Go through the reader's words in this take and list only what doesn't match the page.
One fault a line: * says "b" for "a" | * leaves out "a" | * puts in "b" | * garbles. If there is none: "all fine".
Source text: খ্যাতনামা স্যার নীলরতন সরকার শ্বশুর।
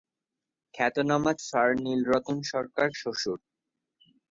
all fine